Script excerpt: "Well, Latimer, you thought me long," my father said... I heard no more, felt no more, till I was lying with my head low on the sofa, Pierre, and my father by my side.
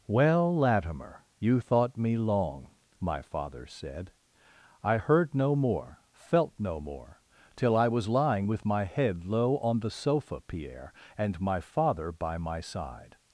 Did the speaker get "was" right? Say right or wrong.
right